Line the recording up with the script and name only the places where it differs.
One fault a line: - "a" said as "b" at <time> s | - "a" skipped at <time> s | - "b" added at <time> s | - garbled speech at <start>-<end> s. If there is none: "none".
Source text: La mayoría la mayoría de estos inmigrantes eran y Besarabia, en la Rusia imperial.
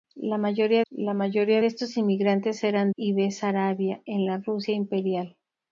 none